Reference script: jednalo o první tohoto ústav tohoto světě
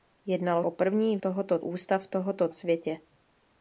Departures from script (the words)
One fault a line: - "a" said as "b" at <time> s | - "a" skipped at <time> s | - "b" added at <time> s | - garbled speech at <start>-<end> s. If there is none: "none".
none